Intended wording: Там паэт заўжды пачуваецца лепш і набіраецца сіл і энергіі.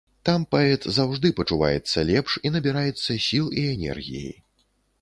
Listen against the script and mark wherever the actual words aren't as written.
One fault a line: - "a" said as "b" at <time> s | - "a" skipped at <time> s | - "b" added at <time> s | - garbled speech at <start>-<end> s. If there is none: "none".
none